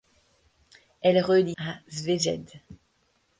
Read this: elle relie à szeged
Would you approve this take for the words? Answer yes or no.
yes